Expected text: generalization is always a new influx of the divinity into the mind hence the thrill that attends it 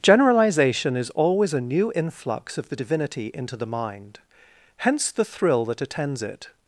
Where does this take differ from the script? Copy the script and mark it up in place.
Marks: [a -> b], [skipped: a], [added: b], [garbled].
generalization is always a new influx of the divinity into the mind hence the thrill that attends it